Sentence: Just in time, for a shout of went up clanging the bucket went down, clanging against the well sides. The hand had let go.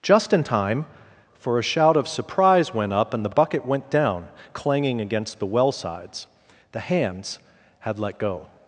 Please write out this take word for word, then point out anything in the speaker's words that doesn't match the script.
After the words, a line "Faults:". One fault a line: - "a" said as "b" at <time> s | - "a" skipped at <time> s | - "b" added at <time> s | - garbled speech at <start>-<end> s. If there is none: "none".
Just in time, for a shout of surprise went up and the bucket went down, clanging against the well sides. The hands had let go.
Faults:
- "surprise" added at 2.1 s
- "clanging" said as "and" at 3.1 s
- "hand" said as "hands" at 6.8 s